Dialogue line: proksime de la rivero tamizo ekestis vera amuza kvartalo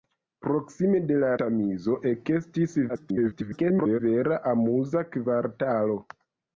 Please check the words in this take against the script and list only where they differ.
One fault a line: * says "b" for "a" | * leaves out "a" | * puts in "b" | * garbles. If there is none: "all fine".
* leaves out "rivero"
* garbles